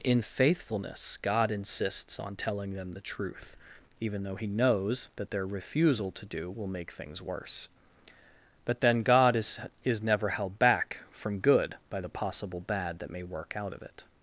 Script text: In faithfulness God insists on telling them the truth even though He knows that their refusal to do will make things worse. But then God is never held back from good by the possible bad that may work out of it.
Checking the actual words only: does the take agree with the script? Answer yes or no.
no